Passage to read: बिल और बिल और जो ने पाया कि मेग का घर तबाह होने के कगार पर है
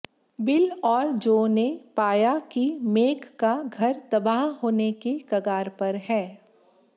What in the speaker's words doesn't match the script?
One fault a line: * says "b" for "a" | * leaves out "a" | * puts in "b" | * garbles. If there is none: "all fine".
* leaves out "बिल और"